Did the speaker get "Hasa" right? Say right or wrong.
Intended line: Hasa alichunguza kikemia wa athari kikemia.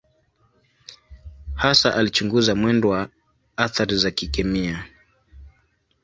right